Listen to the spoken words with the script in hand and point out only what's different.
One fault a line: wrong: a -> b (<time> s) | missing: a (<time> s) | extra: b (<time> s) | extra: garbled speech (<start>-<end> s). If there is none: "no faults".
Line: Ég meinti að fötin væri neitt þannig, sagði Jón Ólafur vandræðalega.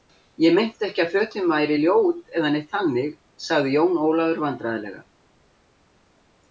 extra: ekki (0.9 s)
extra: ljót eða (1.8 s)